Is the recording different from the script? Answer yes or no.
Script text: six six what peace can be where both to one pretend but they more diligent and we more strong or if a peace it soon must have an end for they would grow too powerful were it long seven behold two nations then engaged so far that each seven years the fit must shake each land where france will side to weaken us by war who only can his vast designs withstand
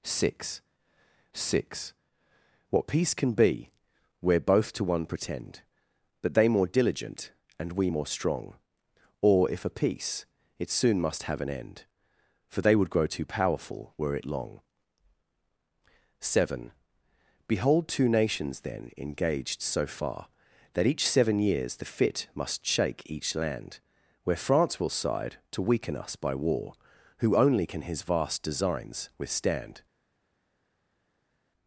no